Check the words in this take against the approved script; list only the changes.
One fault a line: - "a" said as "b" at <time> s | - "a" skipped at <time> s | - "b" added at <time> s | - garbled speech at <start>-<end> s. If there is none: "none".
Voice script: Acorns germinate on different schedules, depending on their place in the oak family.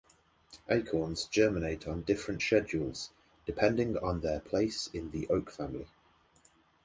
none